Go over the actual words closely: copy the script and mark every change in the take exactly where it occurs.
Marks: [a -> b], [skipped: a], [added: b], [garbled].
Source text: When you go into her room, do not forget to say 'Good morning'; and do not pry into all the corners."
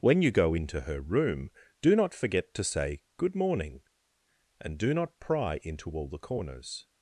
When you go into her room, do not forget to say 'Good morning'; and do not pry into all the corners."